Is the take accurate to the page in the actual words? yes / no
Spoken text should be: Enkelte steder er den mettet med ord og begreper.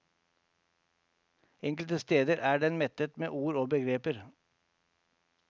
yes